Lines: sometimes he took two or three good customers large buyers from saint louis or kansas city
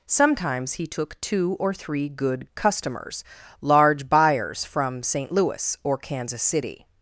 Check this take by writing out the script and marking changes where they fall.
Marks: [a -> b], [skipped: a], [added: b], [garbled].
sometimes he took two or three good customers large buyers from saint louis or kansas city